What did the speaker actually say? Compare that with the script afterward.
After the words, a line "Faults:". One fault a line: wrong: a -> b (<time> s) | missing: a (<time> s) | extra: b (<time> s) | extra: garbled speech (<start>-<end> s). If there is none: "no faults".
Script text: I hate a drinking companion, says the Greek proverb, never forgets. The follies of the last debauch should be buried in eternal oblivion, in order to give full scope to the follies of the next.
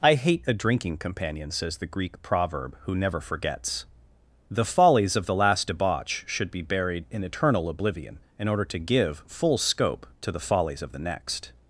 I hate a drinking companion, says the Greek proverb, who never forgets. The follies of the last debauch should be buried in eternal oblivion, in order to give full scope to the follies of the next.
Faults:
extra: who (2.8 s)